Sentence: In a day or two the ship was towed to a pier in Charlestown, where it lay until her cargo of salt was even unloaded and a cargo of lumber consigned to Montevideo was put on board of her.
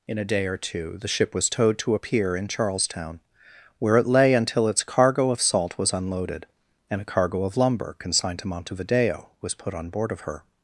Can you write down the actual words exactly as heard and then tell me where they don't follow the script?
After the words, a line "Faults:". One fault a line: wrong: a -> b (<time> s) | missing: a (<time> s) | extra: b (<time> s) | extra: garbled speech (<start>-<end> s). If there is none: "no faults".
In a day or two the ship was towed to a pier in Charlestown, where it lay until its cargo of salt was unloaded and a cargo of lumber consigned to Montevideo was put on board of her.
Faults:
wrong: her -> its (4.7 s)
missing: even (5.9 s)